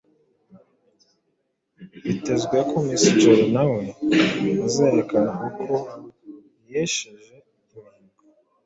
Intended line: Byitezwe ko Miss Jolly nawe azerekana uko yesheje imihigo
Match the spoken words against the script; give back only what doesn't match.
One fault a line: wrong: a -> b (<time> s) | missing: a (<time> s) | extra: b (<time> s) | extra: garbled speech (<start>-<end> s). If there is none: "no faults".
no faults